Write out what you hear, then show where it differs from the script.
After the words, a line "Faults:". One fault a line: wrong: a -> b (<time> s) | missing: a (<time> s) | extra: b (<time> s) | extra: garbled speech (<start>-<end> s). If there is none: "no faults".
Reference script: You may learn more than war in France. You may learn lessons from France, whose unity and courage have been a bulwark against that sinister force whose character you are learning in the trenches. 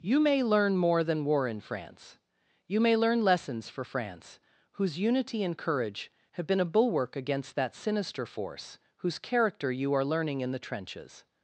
You may learn more than war in France. You may learn lessons for France, whose unity and courage have been a bulwark against that sinister force whose character you are learning in the trenches.
Faults:
wrong: from -> for (3.7 s)